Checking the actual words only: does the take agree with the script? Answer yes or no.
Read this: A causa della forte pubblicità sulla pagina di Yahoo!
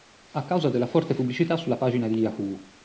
yes